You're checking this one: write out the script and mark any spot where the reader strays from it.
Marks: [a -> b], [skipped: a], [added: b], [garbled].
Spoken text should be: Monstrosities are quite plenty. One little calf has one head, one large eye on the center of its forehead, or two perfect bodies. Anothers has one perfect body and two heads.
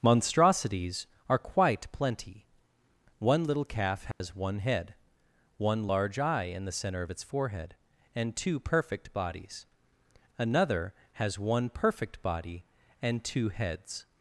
Monstrosities are quite plenty. One little calf has one head, one large eye [on -> in] the center of its forehead, [or -> and] two perfect bodies. [Anothers -> Another] has one perfect body and two heads.